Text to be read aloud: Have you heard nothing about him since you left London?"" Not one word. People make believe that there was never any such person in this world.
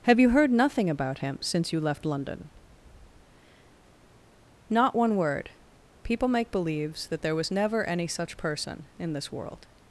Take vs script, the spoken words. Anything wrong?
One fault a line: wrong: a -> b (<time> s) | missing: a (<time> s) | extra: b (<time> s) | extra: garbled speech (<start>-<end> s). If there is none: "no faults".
wrong: believe -> believes (6.5 s)